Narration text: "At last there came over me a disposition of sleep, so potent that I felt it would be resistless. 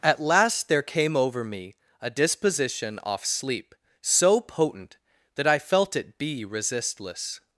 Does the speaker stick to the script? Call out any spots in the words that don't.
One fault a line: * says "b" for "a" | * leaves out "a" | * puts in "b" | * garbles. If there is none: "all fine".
* says "off" for "of"
* leaves out "would"